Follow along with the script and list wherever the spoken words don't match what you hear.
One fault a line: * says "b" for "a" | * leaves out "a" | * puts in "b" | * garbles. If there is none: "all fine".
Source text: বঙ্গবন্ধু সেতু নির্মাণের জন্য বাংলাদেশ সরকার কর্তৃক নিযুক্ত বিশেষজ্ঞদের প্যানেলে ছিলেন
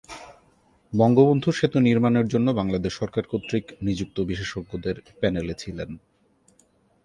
all fine